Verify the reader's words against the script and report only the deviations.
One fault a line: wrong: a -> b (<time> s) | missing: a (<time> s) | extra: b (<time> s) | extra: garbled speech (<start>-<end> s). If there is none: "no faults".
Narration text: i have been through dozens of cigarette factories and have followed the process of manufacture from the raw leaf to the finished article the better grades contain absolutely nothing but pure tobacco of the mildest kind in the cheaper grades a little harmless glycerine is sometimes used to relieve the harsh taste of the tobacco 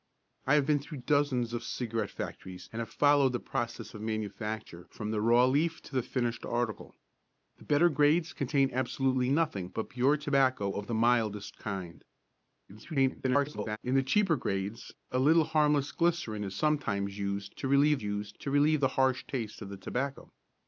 extra: garbled speech (12.7-13.8 s)
extra: used to relieve (18.0 s)